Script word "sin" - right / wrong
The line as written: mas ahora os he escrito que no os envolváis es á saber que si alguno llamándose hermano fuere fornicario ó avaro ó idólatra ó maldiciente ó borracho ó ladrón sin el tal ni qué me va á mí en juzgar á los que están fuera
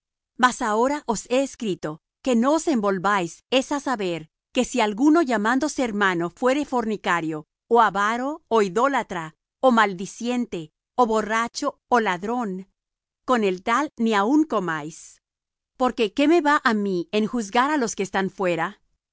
wrong